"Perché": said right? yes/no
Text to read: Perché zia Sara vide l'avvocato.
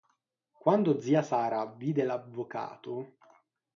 no